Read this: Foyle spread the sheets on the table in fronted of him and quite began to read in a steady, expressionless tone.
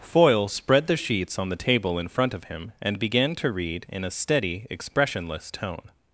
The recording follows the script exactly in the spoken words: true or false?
false